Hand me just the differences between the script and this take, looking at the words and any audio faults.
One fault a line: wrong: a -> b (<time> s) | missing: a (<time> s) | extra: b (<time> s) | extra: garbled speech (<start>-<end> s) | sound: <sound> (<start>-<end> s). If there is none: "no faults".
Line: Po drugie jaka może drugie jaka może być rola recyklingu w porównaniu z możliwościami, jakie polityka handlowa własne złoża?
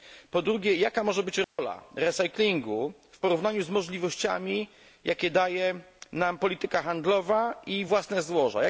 missing: drugie jaka może (1.2 s)
sound: dropout (1.4-1.6 s)
extra: daje nam (5.3 s)
extra: i (7.7 s)